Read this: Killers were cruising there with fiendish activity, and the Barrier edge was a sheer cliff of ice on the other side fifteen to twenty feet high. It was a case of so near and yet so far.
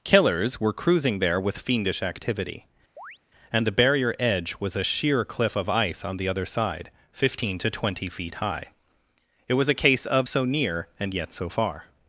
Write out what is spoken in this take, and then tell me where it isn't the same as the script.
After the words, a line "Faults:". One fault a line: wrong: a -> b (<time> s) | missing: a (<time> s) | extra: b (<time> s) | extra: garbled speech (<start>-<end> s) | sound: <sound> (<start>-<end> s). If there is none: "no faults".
Killers were cruising there with fiendish activity, and the Barrier edge was a sheer cliff of ice on the other side fifteen to twenty feet high. It was a case of so near and yet so far.
Faults:
sound: chirp (3.0-3.2 s)